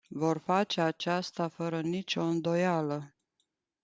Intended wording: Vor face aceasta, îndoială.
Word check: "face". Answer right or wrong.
right